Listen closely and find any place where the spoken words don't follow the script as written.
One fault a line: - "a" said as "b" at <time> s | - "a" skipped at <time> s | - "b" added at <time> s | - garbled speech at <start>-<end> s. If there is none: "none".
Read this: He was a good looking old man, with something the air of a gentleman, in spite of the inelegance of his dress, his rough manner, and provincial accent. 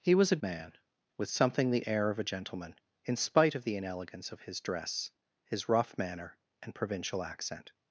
- "good looking old" skipped at 0.4 s